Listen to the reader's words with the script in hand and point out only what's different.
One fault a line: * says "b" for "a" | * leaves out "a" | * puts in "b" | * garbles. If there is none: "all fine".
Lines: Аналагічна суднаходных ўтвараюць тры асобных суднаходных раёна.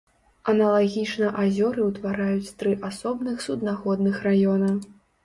* says "азёры" for "суднаходных"